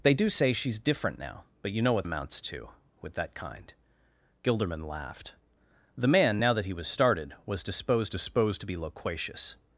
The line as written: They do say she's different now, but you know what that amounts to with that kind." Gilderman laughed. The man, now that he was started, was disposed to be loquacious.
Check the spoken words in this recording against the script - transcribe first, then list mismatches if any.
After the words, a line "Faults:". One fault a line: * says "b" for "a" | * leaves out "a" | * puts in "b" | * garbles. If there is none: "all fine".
They do say she's different now, but you know what amounts to with that kind." Gilderman laughed. The man, now that he was started, was disposed disposed to be loquacious.
Faults:
* leaves out "that"
* puts in "disposed"